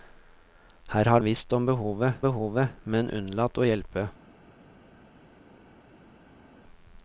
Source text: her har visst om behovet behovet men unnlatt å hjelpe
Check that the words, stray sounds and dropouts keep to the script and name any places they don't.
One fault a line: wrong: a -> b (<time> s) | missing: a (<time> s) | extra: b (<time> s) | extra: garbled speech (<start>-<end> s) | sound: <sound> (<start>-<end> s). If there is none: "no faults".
no faults